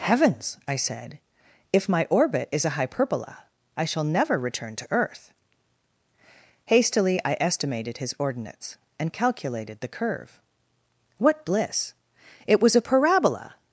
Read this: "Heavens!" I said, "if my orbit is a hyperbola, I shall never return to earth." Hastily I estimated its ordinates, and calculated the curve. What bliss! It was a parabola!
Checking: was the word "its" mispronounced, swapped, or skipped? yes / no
yes